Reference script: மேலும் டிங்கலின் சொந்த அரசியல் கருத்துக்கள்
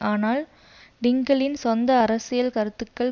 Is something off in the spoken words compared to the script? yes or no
yes